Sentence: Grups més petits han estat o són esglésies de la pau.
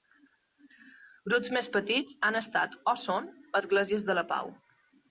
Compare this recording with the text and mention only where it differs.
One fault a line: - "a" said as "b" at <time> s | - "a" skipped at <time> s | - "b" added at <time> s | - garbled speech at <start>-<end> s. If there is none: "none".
none